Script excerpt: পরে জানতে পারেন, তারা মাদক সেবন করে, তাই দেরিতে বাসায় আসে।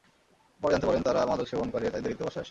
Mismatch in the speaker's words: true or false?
false